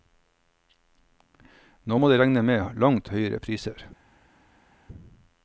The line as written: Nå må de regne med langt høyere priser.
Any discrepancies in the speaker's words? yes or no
no